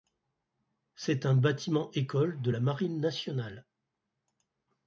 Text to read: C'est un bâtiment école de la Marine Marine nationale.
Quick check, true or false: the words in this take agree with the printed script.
false